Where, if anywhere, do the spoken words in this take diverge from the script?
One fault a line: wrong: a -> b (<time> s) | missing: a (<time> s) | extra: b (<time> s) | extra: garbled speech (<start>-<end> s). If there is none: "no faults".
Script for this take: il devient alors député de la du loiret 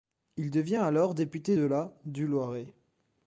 no faults